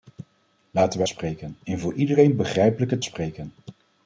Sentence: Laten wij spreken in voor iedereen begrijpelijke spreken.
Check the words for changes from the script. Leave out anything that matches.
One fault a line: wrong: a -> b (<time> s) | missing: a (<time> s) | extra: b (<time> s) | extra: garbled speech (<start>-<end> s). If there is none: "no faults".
no faults